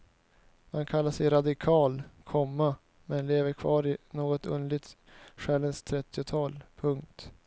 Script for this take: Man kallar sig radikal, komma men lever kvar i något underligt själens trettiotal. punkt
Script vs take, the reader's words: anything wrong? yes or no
no